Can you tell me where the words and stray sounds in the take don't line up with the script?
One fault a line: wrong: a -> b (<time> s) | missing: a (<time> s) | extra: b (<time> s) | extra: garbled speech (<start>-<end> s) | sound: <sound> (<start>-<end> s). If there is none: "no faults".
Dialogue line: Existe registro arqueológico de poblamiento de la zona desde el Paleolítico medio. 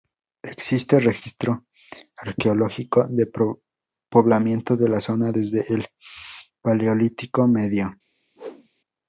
sound: whoosh (8.4-8.7 s)